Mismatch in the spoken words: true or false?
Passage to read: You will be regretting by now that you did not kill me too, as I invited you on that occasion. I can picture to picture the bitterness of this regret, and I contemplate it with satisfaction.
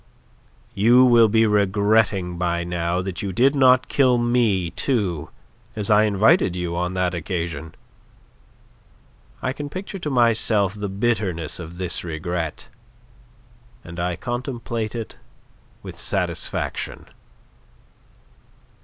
true